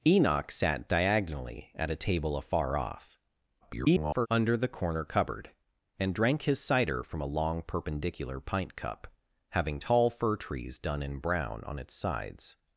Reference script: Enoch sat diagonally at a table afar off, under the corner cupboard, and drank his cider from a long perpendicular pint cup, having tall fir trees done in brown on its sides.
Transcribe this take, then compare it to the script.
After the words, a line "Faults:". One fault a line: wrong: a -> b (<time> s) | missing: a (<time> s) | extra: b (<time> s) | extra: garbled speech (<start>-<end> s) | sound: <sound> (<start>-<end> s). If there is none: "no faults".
Enoch sat diagonally at a table afar off, [garbled] under the corner cupboard, and drank his cider from a long perpendicular pint cup, having tall fir trees done in brown on its sides.
Faults:
extra: garbled speech (3.6-4.3 s)